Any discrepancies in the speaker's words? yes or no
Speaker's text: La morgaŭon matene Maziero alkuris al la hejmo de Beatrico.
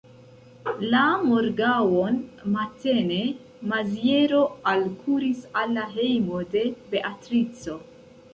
no